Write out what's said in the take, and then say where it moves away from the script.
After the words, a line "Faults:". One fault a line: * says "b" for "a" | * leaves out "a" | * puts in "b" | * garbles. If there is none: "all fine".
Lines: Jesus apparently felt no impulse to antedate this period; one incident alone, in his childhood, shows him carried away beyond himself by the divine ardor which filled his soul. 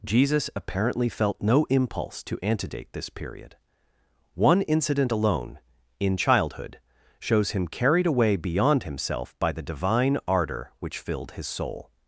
Jesus apparently felt no impulse to antedate this period; one incident alone, in childhood, shows him carried away beyond himself by the divine ardor which filled his soul.
Faults:
* leaves out "his"